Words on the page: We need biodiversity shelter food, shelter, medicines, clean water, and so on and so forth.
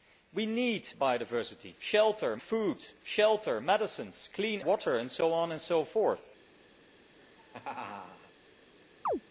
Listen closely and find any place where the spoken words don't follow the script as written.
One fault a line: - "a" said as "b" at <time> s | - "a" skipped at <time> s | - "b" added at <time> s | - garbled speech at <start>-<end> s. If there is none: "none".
none